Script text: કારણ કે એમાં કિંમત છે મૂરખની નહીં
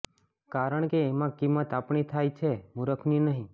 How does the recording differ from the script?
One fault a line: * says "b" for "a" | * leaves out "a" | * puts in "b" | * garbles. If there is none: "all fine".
* puts in "આપણી થાય"